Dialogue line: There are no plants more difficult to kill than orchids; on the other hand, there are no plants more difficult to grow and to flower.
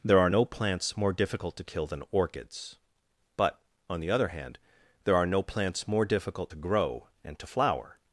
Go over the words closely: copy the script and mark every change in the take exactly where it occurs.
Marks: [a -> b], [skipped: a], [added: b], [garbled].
There are no plants more difficult to kill than orchids; [added: but] on the other hand, there are no plants more difficult to grow and to flower.